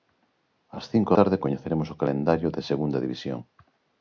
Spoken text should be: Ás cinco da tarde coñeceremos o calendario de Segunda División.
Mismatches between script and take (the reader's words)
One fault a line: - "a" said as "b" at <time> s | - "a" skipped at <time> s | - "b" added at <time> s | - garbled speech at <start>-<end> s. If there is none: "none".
- "da" skipped at 1.1 s